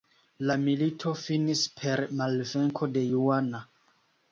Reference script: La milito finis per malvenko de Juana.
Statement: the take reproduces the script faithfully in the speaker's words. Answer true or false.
true